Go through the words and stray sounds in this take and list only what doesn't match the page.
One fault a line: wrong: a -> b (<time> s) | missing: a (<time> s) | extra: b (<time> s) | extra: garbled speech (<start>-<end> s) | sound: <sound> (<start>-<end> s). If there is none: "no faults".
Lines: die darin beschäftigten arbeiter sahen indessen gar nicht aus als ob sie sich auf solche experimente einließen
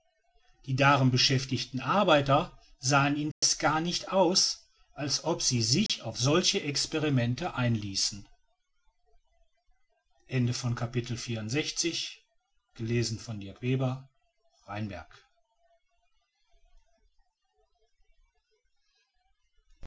sound: dropout (3.3-3.4 s)
sound: dropout (5.9-5.9 s)